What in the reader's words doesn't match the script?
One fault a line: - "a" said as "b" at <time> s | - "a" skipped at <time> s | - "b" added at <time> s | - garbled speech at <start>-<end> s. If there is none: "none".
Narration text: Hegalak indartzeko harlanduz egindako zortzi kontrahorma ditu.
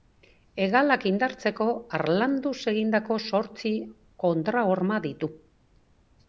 none